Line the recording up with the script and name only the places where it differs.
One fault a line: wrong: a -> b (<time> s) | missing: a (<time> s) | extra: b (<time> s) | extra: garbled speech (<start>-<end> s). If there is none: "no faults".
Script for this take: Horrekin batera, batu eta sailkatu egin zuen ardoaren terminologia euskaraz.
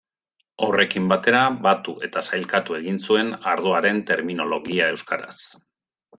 no faults